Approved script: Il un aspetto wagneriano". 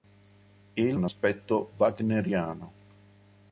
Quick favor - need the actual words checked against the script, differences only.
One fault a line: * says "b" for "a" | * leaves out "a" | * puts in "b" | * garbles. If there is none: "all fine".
all fine